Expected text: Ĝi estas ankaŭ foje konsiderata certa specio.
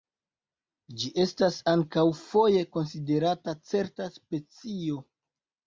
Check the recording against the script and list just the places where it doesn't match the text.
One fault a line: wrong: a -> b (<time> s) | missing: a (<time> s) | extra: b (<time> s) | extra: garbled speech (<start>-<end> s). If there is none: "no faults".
no faults